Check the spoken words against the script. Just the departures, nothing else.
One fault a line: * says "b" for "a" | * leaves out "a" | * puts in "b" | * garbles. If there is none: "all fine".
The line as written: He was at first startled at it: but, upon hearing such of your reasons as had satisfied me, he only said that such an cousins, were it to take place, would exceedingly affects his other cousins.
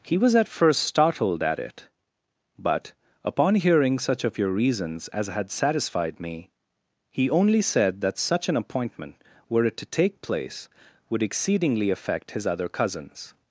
* says "appointment" for "cousins"
* says "affect" for "affects"